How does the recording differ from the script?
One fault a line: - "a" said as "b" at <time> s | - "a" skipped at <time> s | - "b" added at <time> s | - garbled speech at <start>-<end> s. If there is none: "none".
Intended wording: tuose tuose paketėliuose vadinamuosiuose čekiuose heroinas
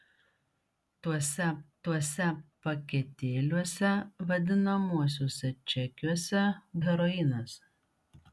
none